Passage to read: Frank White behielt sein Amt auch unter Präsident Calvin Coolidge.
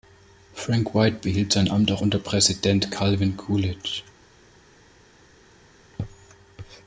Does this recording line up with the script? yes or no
yes